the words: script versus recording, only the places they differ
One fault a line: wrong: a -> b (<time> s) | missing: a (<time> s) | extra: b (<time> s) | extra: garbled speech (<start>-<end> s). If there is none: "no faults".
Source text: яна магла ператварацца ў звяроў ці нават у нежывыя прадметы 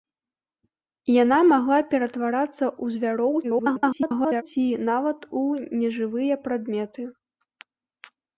extra: garbled speech (3.4-4.4 s)